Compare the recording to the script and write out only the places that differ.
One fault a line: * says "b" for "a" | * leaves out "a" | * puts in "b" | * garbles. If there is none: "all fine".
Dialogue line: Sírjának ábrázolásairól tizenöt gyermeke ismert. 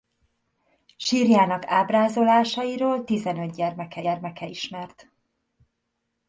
* puts in "gyermeke"